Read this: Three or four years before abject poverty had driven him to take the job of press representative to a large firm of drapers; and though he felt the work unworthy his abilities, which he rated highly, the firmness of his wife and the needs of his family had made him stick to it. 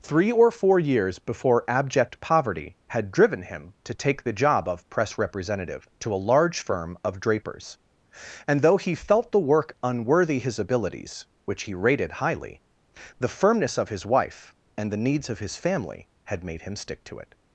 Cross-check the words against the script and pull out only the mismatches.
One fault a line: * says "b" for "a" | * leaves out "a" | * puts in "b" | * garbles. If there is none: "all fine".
all fine